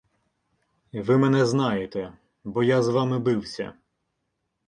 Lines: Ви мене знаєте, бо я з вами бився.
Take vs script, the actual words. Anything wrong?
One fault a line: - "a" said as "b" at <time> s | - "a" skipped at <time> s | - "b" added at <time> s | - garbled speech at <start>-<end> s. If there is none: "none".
none